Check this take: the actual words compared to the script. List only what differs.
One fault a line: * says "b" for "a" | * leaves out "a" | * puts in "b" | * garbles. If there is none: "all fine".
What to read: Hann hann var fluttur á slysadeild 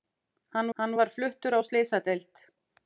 all fine